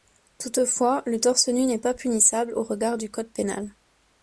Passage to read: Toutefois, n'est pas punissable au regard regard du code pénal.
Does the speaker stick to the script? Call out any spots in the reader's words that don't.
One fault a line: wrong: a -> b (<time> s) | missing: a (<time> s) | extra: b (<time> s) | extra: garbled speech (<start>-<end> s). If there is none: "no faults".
extra: le torse nu (1.1 s)
missing: regard (3.0 s)